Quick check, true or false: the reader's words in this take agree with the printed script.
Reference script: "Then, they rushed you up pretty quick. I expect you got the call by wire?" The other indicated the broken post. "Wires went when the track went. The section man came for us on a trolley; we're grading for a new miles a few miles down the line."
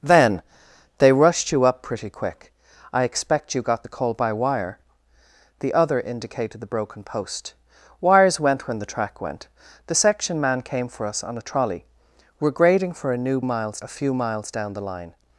true